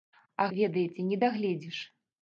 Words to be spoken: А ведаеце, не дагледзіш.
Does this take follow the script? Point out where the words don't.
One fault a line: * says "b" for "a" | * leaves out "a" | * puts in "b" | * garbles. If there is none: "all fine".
all fine